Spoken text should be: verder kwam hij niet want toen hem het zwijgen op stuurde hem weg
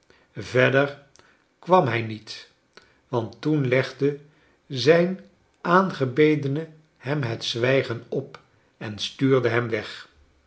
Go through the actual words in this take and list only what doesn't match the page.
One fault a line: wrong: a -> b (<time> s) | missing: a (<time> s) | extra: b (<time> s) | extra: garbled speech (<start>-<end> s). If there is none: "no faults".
extra: legde zijn aangebedene (3.7 s)
extra: en (8.8 s)